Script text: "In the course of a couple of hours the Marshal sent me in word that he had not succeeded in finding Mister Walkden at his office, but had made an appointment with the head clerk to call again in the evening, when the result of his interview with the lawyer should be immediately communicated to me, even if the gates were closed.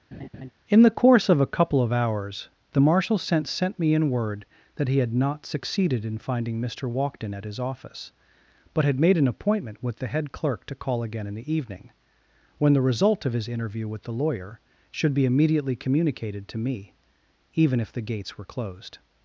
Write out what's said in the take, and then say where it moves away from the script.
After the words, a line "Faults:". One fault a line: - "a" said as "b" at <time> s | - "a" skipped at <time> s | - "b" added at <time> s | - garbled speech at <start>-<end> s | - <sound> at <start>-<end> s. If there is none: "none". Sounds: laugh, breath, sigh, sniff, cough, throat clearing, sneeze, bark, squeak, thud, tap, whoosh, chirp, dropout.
"In the course of a couple of hours the Marshal sent sent me in word that he had not succeeded in finding Mister Walkden at his office, but had made an appointment with the head clerk to call again in the evening, when the result of his interview with the lawyer should be immediately communicated to me, even if the gates were closed.
Faults:
- laugh at 0.1-0.5 s
- "sent" added at 3.5 s